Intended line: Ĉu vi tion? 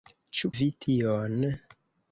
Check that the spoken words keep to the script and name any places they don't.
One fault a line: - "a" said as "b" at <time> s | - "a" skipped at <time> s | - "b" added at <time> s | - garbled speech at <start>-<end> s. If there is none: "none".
none